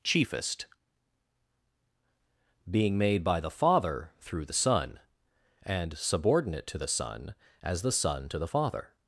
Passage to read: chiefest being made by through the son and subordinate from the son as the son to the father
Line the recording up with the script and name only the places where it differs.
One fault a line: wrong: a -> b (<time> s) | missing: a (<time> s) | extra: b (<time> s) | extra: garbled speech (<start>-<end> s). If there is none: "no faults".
extra: the father (3.4 s)
wrong: from -> to (6.7 s)